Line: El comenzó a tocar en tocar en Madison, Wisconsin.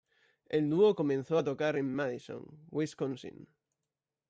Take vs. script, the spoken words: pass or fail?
fail